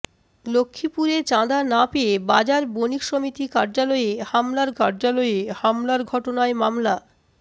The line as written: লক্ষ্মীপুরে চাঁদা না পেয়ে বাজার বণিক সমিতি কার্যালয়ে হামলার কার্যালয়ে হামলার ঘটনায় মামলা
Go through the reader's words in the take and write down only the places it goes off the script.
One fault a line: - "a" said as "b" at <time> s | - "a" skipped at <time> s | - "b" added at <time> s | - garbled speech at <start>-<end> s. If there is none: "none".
none